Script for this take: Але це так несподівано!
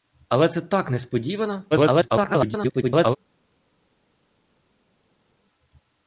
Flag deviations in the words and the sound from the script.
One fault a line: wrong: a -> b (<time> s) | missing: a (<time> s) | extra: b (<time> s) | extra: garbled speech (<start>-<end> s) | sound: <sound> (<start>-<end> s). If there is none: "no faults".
extra: garbled speech (1.7-3.2 s)